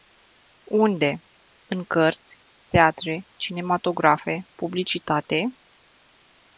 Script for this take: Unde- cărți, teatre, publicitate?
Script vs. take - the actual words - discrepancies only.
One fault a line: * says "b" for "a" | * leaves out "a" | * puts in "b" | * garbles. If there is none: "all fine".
* puts in "în"
* puts in "cinematografe"